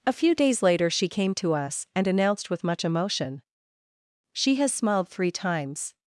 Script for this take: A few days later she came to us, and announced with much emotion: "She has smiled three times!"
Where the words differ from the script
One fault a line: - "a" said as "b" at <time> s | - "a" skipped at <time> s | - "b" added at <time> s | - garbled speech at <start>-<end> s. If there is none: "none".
none